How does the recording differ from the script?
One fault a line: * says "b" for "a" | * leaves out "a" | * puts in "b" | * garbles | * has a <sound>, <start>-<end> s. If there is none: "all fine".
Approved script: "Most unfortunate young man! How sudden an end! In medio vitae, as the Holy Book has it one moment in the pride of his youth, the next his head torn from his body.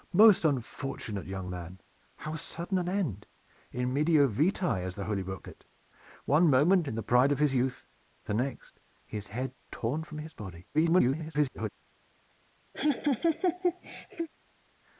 * leaves out "has"
* garbles
* has a laugh, 12.7-14.3 s